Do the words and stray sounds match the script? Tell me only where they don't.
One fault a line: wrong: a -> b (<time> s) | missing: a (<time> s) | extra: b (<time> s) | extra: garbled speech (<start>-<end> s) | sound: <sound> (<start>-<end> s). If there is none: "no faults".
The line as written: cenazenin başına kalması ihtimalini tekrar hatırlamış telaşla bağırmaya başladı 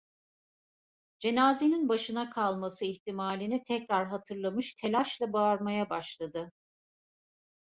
no faults